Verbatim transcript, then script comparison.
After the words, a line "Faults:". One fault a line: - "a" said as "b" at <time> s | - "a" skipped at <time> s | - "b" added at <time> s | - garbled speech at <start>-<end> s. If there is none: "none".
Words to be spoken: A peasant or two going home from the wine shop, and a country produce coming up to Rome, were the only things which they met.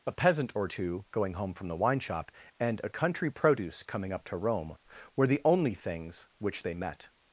A peasant or two going home from the wine shop, and a country produce coming up to Rome, were the only things which they met.
Faults:
none